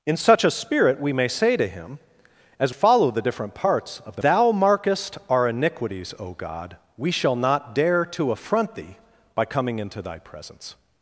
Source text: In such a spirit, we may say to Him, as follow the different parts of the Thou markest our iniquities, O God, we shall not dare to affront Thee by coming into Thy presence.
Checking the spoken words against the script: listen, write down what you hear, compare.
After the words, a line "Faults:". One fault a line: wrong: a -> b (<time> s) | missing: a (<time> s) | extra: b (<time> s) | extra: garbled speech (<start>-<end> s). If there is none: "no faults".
In such a spirit, we may say to Him, as follow the different parts of the Thou markest our iniquities, O God, we shall not dare to affront Thee by coming into Thy presence.
Faults:
no faults